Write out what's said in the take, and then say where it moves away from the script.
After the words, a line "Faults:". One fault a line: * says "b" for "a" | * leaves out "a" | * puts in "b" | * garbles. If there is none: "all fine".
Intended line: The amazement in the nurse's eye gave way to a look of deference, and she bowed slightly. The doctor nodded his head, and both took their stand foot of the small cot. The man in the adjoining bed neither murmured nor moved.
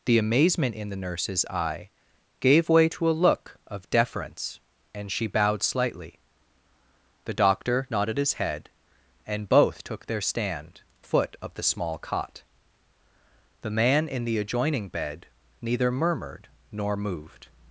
The amazement in the nurse's eye gave way to a look of deference, and she bowed slightly. The doctor nodded his head, and both took their stand foot of the small cot. The man in the adjoining bed neither murmured nor moved.
Faults:
all fine